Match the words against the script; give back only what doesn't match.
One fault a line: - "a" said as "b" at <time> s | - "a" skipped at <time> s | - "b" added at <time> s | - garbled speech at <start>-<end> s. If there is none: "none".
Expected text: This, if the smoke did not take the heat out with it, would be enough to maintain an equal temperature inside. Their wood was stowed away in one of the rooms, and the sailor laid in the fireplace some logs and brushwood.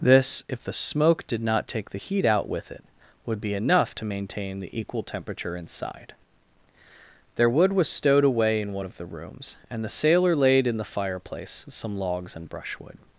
- "an" said as "the" at 4.6 s